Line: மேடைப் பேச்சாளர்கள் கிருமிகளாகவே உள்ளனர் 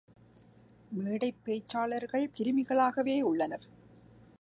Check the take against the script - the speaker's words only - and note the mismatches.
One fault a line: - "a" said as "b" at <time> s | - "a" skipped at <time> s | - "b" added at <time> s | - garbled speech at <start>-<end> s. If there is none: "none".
none